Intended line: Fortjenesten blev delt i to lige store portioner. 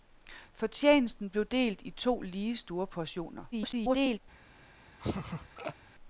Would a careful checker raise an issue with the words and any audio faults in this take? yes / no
yes